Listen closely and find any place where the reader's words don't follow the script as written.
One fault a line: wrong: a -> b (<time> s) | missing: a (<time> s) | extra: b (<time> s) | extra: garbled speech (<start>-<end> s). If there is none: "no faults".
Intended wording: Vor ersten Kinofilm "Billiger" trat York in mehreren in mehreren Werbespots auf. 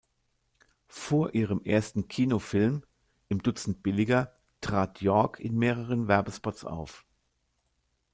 extra: ihrem (1.3 s)
extra: Im Dutzend (3.3 s)
missing: in mehreren (6.1 s)